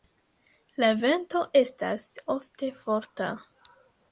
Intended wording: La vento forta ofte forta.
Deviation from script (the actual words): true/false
true